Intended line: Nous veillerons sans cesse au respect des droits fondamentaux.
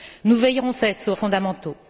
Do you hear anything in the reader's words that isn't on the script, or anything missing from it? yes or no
yes